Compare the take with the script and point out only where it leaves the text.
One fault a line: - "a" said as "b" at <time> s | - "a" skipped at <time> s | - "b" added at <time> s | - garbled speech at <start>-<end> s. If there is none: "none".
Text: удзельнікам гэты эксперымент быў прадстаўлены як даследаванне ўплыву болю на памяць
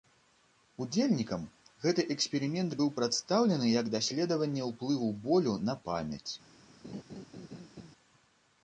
none